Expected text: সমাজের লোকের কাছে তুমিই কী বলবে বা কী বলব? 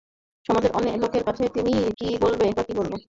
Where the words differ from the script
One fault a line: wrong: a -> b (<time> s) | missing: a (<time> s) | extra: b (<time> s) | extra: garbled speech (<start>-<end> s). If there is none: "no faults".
no faults